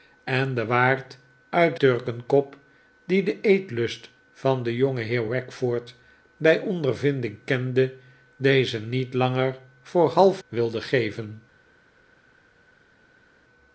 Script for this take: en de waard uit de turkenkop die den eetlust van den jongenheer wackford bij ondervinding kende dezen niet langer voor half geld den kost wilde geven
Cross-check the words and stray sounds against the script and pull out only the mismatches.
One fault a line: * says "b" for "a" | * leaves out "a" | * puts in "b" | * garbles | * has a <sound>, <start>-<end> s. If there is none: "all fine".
* leaves out "de"
* leaves out "geld den kost"